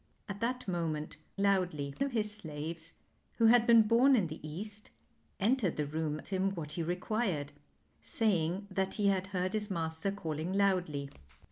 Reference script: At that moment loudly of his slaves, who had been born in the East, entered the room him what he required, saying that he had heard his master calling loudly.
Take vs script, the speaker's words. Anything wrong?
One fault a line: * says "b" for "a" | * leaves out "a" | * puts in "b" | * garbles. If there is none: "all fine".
all fine